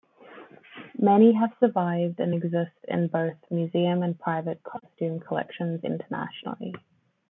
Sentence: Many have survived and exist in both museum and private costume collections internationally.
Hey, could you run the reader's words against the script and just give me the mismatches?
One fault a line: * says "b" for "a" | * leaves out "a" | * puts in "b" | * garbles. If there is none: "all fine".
all fine